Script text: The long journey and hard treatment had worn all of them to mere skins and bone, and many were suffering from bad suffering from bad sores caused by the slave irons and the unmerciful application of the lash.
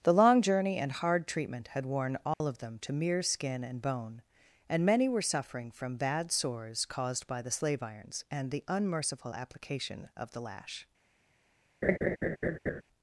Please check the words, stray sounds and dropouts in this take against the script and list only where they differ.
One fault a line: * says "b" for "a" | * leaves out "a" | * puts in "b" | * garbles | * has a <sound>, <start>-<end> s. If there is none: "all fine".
* has a dropout, 2.3-2.4 s
* says "skin" for "skins"
* leaves out "suffering from bad"
* has a laugh, 11.8-12.8 s